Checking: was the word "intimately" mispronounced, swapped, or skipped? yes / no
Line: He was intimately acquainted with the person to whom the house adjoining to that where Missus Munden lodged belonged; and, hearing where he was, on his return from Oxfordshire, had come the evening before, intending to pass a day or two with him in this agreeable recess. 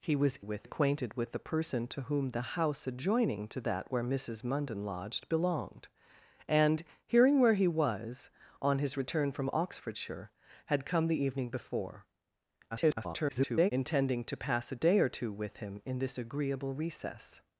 yes